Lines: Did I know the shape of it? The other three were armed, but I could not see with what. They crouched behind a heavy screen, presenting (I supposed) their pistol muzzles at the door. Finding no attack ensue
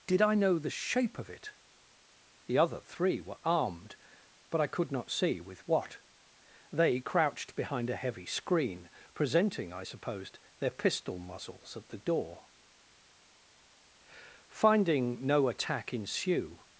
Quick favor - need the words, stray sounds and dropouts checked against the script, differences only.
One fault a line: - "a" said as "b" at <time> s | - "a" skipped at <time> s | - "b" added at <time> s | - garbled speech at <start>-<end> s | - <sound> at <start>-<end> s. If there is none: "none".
none